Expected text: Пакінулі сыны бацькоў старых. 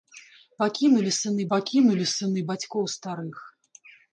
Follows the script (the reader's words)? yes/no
no